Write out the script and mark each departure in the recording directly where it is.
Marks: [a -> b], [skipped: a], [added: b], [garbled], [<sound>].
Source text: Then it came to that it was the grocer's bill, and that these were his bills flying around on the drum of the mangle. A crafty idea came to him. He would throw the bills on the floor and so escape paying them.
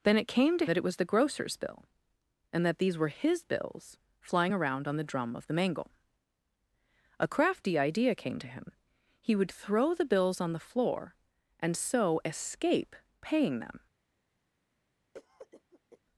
Then it came to that it was the grocer's bill, and that these were his bills flying around on the drum of the mangle. A crafty idea came to him. He would throw the bills on the floor and so escape paying them. [cough]